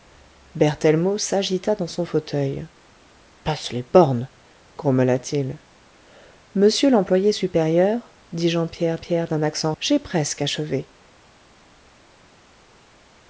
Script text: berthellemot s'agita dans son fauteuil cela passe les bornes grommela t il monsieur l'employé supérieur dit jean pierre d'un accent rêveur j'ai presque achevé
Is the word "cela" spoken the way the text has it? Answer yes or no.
no